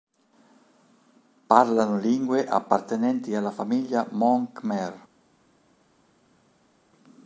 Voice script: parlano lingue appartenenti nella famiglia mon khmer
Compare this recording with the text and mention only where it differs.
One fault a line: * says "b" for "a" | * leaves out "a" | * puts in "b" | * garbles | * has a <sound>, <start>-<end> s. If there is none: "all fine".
* says "alla" for "nella"